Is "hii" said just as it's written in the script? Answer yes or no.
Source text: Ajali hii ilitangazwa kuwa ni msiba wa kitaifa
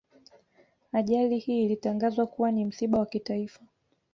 yes